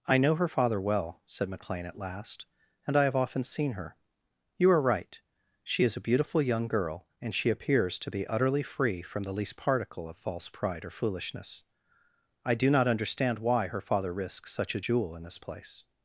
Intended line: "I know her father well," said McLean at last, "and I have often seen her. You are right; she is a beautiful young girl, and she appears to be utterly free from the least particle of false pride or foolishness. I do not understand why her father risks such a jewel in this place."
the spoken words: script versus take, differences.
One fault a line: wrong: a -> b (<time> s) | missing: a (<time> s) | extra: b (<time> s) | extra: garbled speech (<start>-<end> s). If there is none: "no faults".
no faults